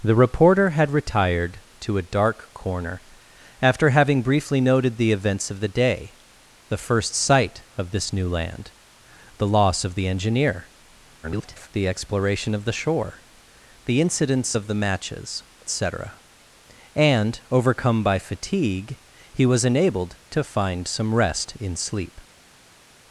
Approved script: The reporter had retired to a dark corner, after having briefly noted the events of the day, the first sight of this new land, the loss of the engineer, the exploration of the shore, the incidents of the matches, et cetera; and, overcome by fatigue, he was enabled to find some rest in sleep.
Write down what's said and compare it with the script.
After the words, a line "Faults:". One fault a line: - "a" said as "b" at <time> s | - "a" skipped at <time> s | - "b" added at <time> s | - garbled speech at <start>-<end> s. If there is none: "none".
The reporter had retired to a dark corner, after having briefly noted the events of the day, the first sight of this new land, the loss of the engineer, [garbled] the exploration of the shore, the incidents of the matches, cetera; and, overcome by fatigue, he was enabled to find some rest in sleep.
Faults:
- garbled speech at 11.2-11.7 s
- "et" skipped at 15.4 s